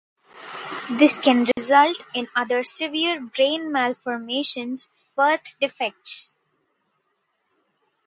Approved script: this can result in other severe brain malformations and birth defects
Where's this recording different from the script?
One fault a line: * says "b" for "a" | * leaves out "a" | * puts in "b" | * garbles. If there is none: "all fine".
* leaves out "and"